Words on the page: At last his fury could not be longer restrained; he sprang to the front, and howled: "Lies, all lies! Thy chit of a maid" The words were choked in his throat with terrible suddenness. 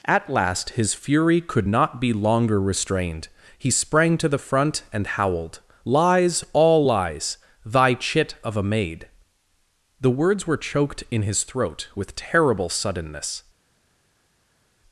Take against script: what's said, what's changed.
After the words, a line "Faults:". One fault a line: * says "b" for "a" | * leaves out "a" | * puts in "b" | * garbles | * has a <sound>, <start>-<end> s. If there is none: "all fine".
At last his fury could not be longer restrained; he sprang to the front, and howled: "Lies, all lies! Thy chit of a maid" The words were choked in his throat with terrible suddenness.
Faults:
all fine